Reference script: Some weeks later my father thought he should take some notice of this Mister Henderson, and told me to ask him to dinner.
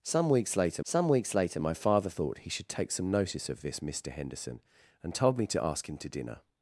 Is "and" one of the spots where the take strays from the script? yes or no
no